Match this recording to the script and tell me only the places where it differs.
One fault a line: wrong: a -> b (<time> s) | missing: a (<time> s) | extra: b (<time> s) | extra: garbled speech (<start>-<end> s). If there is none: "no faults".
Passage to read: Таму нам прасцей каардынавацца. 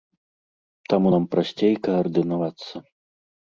no faults